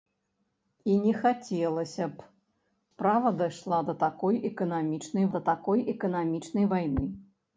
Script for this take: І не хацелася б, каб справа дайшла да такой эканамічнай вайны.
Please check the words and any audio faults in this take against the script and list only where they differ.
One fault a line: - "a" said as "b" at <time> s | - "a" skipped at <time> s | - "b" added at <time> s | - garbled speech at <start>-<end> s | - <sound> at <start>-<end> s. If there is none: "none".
- "каб" skipped at 2.3 s
- "да такой эканамічнай" added at 5.3 s